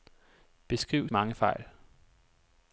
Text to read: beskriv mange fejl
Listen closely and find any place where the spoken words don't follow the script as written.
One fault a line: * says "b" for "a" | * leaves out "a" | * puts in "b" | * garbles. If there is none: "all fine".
all fine